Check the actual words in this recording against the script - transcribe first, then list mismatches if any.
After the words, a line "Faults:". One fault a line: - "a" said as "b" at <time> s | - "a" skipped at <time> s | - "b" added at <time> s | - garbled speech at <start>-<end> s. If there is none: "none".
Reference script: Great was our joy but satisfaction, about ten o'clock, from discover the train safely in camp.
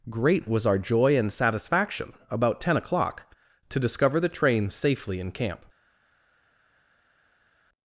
Great was our joy and satisfaction, about ten o'clock, to discover the train safely in camp.
Faults:
- "but" said as "and" at 1.1 s
- "from" said as "to" at 3.7 s